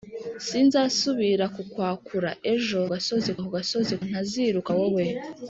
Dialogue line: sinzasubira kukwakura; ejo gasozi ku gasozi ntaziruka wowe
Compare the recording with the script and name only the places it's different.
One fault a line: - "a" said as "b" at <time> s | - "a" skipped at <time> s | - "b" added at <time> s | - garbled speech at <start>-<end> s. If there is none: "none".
none